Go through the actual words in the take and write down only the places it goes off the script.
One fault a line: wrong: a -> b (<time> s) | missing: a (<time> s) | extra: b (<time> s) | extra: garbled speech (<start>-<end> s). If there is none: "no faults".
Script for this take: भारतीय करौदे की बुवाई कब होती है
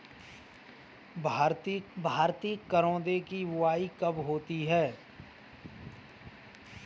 extra: भारतीय (2.0 s)